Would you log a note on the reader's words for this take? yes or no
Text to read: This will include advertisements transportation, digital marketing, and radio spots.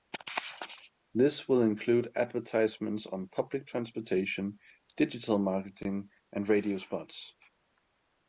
yes